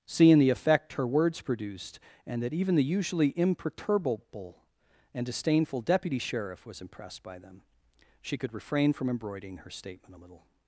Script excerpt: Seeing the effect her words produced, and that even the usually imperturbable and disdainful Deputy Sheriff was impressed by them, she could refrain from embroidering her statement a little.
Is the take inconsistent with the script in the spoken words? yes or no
no